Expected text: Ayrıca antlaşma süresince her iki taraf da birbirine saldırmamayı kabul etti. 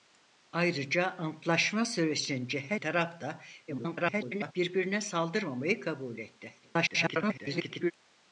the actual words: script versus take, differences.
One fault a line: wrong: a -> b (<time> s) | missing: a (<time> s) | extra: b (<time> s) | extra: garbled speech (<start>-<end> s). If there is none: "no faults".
missing: iki (2.8 s)
extra: garbled speech (3.7-4.5 s)
extra: garbled speech (6.6-7.9 s)